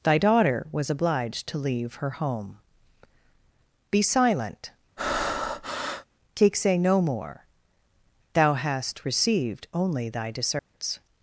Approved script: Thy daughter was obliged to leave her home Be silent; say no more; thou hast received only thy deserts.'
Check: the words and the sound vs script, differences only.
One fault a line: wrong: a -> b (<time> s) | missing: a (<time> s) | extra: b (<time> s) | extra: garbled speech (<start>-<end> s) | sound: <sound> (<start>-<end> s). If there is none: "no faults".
sound: breath (5.0-6.1 s)
extra: take (6.3 s)
sound: dropout (10.6-10.7 s)